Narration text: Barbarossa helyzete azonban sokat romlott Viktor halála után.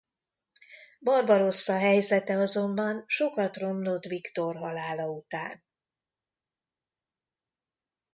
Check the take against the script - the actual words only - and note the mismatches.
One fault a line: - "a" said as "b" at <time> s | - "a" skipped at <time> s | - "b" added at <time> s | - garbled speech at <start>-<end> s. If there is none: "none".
none